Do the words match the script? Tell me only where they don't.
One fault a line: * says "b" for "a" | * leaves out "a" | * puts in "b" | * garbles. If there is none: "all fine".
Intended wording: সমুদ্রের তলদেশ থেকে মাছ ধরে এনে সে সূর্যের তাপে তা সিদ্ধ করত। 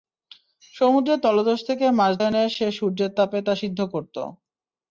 * leaves out "ধরে"